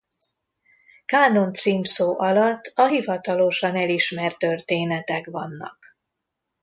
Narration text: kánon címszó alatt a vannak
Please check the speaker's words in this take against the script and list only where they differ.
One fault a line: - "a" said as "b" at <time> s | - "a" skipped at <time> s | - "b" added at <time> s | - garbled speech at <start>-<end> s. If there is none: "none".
- "hivatalosan elismert történetek" added at 2.9 s